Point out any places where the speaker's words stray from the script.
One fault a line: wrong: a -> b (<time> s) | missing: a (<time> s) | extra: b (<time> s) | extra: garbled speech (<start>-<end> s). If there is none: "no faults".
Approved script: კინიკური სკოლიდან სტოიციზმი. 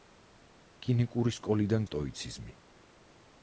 no faults